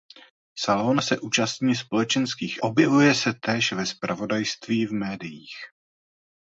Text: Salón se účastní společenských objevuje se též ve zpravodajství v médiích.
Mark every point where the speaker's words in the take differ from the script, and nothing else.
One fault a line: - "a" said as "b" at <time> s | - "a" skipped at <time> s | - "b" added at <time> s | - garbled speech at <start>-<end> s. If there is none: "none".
none